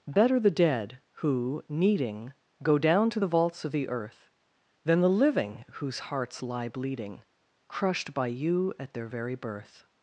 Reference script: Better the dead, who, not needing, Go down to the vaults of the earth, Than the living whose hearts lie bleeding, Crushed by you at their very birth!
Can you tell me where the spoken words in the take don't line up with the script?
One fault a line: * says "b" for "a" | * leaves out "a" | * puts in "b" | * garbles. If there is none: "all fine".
* leaves out "not"